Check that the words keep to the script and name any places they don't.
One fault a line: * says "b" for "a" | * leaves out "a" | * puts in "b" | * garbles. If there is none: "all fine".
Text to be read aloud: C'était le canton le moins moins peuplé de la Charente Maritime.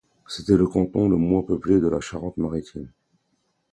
* leaves out "moins"